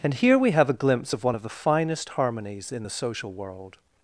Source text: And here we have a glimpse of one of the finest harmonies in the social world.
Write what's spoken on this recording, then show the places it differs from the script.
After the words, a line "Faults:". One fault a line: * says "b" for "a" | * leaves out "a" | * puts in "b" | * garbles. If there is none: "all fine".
And here we have a glimpse of one of the finest harmonies in the social world.
Faults:
all fine